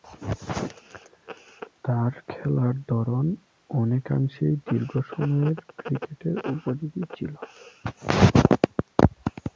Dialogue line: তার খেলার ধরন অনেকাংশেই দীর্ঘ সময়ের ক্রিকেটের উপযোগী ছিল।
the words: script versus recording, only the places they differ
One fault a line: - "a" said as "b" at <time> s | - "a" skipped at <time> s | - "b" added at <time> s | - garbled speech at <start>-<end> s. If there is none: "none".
none